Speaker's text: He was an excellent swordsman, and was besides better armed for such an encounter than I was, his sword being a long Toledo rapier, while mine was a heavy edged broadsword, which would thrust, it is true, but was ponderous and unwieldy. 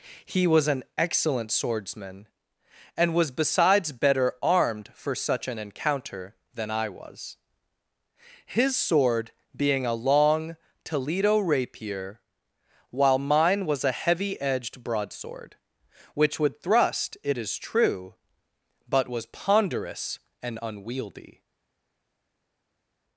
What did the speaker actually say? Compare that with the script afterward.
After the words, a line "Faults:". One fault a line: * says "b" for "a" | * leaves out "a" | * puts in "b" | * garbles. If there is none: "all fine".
He was an excellent swordsman, and was besides better armed for such an encounter than I was, his sword being a long Toledo rapier, while mine was a heavy edged broadsword, which would thrust, it is true, but was ponderous and unwieldy.
Faults:
all fine